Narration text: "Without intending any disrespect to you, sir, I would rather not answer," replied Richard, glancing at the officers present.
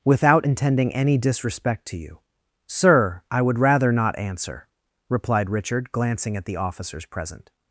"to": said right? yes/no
yes